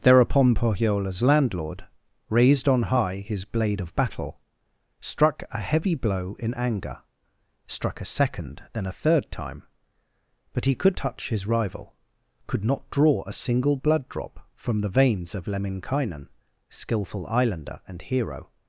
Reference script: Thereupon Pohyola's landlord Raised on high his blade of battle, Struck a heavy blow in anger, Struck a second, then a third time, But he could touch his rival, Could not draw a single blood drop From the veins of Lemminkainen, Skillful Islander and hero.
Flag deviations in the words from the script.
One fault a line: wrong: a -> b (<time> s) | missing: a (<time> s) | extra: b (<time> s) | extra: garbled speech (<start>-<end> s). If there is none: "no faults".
no faults